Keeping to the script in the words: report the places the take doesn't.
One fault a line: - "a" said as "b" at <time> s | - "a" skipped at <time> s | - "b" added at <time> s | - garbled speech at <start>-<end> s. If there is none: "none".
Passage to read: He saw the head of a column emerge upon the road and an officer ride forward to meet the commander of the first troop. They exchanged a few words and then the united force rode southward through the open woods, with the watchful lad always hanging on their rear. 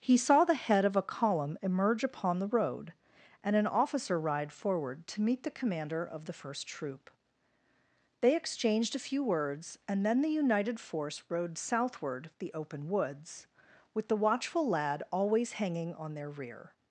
- "through" skipped at 12.3 s